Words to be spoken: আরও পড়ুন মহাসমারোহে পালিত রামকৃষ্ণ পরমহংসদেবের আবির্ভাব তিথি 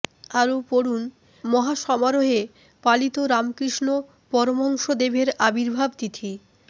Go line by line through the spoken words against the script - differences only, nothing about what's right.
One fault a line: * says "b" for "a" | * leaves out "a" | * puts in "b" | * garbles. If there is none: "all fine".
all fine